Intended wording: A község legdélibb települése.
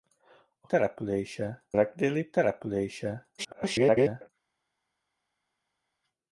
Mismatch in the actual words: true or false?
true